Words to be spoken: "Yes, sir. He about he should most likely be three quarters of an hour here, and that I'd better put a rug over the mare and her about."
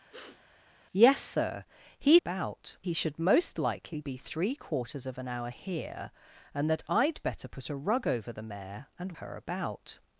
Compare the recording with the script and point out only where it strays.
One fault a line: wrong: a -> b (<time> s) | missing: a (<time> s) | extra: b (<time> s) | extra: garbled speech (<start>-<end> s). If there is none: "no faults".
no faults